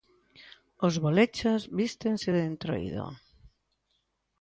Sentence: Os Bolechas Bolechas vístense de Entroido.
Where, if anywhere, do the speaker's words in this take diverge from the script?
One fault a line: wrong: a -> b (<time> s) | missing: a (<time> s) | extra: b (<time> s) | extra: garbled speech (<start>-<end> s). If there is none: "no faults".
missing: Bolechas (1.6 s)